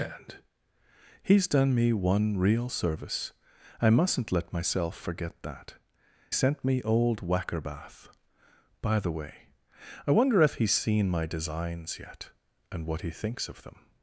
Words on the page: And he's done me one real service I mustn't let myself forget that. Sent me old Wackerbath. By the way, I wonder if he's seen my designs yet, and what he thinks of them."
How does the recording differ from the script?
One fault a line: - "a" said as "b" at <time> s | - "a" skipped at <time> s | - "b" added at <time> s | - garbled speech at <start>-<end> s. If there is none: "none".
none